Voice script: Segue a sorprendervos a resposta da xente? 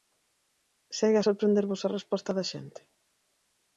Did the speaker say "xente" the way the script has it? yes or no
yes